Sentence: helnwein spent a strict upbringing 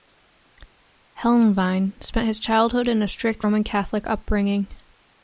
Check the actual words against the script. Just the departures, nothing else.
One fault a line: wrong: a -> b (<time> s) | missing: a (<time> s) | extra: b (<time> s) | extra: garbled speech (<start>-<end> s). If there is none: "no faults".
extra: his childhood in (2.2 s)
extra: roman catholic (3.4 s)